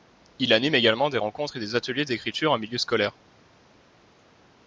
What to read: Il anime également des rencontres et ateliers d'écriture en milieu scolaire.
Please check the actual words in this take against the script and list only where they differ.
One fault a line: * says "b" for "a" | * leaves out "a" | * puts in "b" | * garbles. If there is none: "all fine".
* puts in "des"